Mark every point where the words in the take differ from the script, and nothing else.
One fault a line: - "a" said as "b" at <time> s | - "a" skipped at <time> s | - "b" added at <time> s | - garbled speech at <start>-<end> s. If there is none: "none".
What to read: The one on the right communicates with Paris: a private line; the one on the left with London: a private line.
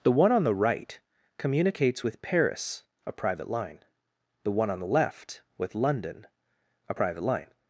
none